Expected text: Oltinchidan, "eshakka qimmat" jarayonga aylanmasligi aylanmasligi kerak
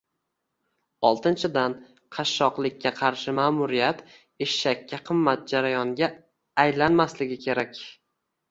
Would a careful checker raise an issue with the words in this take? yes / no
yes